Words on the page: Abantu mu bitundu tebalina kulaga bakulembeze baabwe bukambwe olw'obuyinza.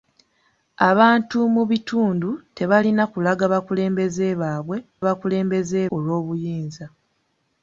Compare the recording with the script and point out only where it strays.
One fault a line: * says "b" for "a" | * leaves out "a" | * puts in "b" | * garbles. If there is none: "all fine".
* says "bakulembeze" for "bukambwe"